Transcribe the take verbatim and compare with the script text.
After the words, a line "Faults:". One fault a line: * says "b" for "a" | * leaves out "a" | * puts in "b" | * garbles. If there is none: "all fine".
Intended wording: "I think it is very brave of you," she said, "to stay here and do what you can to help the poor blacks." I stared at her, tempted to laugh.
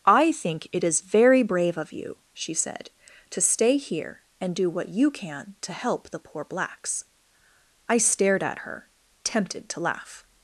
"I think it is very brave of you," she said, "to stay here and do what you can to help the poor blacks." I stared at her, tempted to laugh.
Faults:
all fine